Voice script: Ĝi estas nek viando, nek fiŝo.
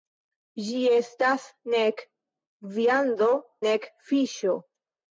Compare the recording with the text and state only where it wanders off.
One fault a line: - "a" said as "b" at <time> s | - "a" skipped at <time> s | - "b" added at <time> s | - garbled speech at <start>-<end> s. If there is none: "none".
none